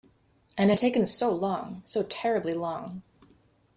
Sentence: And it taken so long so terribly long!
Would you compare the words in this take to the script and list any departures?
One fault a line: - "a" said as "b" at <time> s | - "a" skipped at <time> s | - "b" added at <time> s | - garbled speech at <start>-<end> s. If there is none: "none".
none